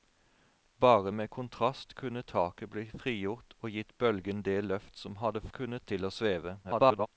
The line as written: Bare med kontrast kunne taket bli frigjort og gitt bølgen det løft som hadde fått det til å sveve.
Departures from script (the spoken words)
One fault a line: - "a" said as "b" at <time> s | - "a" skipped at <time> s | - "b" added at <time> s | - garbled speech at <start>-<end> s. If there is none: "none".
- "fått" said as "kunne" at 5.5 s
- garbled speech at 6.6-7.1 s